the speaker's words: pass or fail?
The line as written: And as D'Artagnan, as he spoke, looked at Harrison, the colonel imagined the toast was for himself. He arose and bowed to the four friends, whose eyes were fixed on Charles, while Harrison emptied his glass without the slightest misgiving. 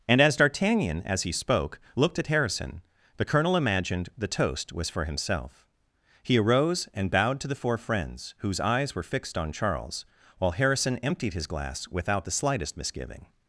pass